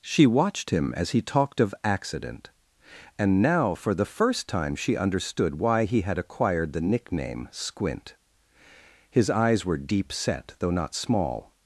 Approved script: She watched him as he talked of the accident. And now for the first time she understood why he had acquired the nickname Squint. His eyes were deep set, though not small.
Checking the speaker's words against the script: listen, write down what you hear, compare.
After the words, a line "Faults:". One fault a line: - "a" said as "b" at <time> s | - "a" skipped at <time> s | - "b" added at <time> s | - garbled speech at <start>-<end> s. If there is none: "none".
She watched him as he talked of accident. And now for the first time she understood why he had acquired the nickname Squint. His eyes were deep set, though not small.
Faults:
- "the" skipped at 1.8 s